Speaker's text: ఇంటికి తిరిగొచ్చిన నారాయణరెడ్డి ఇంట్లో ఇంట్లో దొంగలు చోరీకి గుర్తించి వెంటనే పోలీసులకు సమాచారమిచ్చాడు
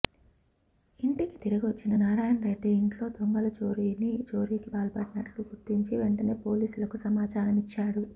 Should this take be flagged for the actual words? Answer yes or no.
yes